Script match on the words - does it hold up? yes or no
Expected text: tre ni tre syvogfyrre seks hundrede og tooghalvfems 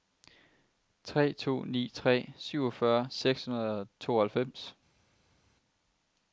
no